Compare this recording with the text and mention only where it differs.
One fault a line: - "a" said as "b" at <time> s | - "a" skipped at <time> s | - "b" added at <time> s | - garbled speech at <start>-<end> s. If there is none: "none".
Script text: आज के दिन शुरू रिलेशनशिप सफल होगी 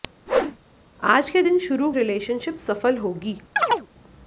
none